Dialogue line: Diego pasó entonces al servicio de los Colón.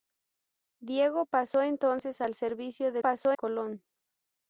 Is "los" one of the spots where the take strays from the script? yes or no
yes